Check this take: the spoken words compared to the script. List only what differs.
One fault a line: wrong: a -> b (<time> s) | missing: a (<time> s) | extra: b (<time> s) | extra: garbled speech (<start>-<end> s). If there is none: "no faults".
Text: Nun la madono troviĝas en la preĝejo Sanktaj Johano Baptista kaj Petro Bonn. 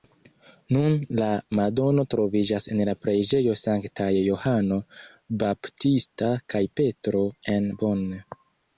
extra: en (7.6 s)